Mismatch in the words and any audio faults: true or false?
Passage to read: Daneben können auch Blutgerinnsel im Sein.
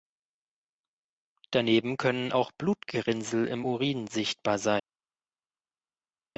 true